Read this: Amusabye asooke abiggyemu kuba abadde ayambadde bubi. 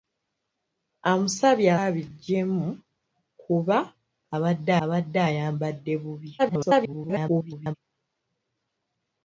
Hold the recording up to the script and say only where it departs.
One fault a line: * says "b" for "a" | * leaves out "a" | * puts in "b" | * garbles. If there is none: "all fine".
* leaves out "asooke"
* puts in "abadde"
* garbles